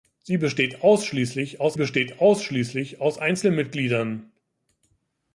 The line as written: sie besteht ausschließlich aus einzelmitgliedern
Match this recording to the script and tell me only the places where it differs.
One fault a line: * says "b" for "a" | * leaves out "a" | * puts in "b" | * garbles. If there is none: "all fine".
* puts in "besteht ausschließlich aus"